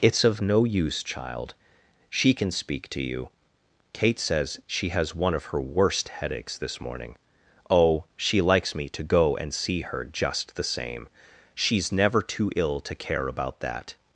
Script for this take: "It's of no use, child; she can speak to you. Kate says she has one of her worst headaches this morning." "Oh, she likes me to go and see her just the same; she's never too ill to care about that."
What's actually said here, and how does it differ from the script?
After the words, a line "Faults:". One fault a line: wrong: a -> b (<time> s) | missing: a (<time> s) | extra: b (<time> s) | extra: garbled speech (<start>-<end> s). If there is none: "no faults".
"It's of no use, child; she can speak to you. Kate says she has one of her worst headaches this morning." "Oh, she likes me to go and see her just the same; she's never too ill to care about that."
Faults:
no faults